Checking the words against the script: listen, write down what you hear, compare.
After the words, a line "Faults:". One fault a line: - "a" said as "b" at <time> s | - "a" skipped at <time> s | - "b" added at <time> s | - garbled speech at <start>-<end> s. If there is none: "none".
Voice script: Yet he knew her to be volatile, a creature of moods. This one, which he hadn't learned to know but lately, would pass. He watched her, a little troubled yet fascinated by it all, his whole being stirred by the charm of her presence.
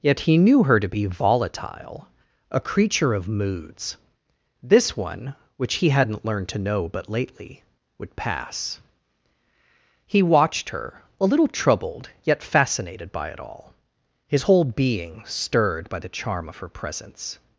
Yet he knew her to be volatile, a creature of moods. This one, which he hadn't learned to know but lately, would pass. He watched her, a little troubled yet fascinated by it all, his whole being stirred by the charm of her presence.
Faults:
none